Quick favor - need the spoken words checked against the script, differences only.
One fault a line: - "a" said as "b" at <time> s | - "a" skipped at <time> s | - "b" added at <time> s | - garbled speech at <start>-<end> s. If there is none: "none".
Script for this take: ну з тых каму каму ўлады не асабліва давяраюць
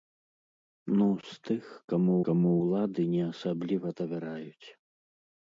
none